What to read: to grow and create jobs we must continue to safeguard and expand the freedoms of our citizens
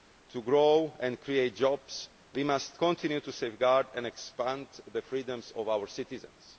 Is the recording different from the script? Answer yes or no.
no